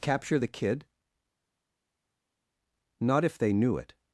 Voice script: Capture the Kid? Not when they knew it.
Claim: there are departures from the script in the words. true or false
true